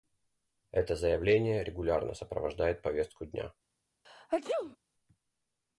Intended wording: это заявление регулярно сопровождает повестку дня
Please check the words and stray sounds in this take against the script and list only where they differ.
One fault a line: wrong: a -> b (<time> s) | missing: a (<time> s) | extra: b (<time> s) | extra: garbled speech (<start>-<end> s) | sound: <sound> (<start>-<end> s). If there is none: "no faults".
sound: sneeze (4.0-4.8 s)